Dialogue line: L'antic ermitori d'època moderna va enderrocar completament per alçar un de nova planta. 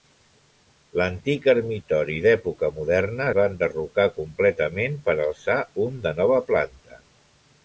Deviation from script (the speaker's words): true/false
false